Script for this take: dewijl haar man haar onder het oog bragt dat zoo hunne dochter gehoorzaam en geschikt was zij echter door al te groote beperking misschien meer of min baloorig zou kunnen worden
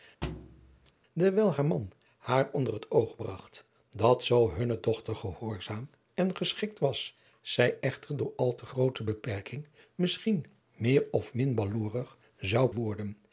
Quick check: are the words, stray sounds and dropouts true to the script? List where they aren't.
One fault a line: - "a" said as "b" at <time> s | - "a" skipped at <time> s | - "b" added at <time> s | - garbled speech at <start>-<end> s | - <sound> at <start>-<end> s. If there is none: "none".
- thud at 0.2-0.9 s
- "kunnen" skipped at 12.7 s